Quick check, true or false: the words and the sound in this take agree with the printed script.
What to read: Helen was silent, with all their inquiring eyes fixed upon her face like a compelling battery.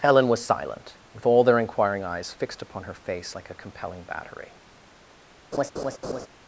false